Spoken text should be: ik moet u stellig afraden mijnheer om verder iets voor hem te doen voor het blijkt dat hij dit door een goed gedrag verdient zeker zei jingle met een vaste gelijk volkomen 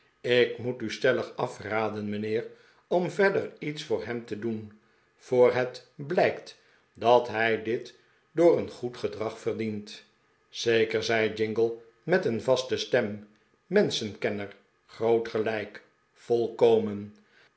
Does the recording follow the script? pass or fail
fail